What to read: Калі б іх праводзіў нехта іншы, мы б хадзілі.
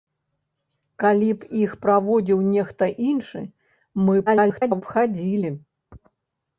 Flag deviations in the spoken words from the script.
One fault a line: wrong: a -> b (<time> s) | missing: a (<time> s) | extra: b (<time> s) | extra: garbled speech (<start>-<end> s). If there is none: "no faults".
extra: garbled speech (4.3-4.8 s)